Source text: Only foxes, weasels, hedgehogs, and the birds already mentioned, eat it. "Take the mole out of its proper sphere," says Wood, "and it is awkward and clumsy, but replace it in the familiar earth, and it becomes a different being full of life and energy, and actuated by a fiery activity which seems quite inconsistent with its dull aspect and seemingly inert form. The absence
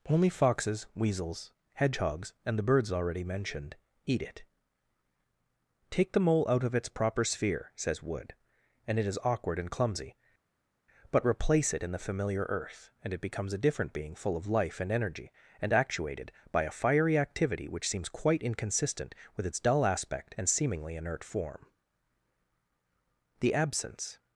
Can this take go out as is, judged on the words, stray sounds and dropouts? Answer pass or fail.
pass